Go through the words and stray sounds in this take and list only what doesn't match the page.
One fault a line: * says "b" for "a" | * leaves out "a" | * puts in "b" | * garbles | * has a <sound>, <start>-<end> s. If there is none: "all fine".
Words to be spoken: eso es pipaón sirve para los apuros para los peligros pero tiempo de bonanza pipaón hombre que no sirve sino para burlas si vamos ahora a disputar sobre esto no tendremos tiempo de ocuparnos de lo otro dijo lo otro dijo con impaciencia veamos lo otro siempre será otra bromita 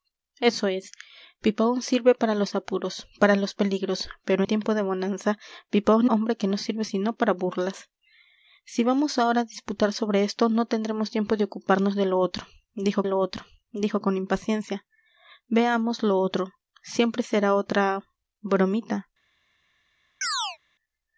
* has a chirp, 20.2-20.6 s